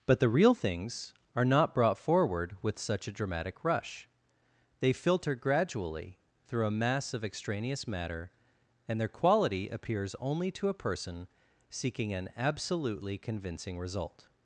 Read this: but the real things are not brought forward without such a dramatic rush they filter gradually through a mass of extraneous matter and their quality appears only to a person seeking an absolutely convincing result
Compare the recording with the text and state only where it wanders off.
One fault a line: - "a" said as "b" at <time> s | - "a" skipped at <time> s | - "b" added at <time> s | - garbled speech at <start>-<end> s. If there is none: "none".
- "without" said as "with" at 2.6 s